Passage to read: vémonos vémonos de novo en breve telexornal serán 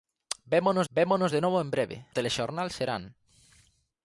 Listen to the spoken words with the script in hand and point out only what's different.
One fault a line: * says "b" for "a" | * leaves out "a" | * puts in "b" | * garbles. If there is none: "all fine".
all fine